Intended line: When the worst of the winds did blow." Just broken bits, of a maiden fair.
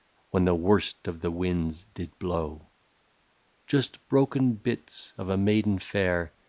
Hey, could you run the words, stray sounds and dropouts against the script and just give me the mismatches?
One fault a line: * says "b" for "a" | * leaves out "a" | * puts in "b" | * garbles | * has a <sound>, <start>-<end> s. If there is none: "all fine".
all fine